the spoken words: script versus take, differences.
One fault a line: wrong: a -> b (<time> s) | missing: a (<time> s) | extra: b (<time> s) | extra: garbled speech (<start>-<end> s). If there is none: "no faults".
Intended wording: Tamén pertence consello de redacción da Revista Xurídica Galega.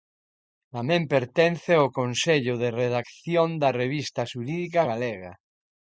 extra: ao (1.8 s)